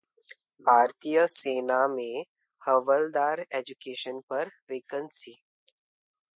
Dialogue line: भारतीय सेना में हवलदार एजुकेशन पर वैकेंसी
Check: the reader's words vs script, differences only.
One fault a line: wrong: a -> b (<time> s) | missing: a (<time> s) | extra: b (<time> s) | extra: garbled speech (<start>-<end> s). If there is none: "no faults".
no faults